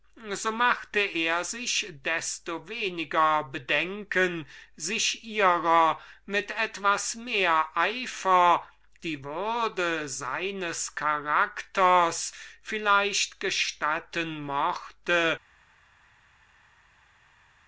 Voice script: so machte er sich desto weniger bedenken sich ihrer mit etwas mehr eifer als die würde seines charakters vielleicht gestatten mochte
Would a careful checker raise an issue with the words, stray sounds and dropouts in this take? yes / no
yes